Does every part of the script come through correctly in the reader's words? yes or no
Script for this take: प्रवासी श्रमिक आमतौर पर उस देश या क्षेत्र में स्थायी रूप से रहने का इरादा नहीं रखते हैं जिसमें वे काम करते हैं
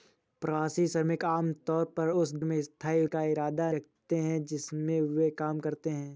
no